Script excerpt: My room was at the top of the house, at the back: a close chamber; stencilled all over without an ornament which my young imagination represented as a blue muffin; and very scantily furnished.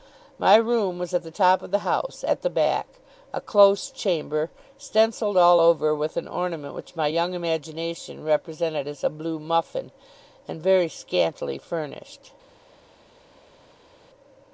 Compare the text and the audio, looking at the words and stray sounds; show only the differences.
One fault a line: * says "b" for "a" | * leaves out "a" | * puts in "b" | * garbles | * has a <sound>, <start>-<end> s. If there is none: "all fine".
* says "with" for "without"